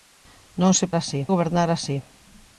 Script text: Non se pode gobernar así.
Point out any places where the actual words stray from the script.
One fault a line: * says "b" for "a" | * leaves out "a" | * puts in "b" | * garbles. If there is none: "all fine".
* says "así" for "pode"